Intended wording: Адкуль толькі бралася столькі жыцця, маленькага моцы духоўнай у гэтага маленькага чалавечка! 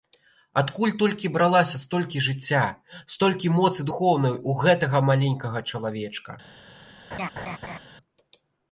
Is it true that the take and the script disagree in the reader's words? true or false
true